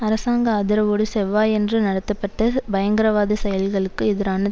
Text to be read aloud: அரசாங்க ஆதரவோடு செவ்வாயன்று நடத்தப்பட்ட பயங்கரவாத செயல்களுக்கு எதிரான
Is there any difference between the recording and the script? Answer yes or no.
no